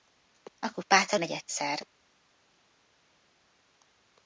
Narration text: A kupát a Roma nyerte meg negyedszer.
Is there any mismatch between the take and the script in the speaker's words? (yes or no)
yes